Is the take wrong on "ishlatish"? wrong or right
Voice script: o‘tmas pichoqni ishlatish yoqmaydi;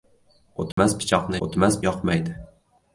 wrong